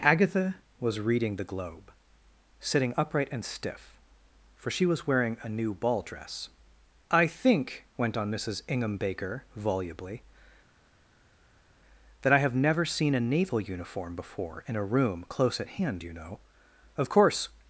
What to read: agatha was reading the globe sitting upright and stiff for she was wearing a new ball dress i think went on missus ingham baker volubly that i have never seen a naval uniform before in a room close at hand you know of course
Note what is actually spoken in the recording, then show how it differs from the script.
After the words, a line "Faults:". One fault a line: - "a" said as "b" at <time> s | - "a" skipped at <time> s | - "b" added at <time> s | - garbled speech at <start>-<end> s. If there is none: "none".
agatha was reading the globe sitting upright and stiff for she was wearing a new ball dress i think went on missus ingham baker volubly that i have never seen a naval uniform before in a room close at hand you know of course
Faults:
none